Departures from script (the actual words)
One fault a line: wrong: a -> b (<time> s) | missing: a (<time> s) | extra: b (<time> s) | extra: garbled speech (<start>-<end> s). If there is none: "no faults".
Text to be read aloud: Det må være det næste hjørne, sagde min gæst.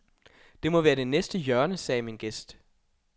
no faults